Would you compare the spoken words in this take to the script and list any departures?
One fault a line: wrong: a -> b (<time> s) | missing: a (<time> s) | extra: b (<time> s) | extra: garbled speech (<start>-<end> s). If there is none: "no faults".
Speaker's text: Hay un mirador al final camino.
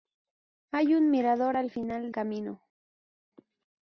no faults